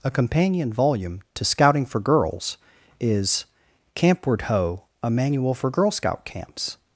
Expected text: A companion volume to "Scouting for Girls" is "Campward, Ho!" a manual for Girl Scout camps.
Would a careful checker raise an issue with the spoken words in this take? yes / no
no